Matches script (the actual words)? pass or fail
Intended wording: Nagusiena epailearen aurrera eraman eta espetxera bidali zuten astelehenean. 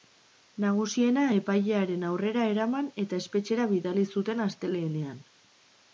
pass